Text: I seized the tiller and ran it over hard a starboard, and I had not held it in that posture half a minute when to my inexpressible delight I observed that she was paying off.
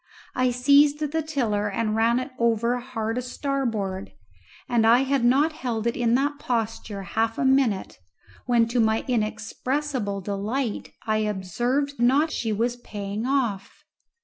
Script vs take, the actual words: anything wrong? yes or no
yes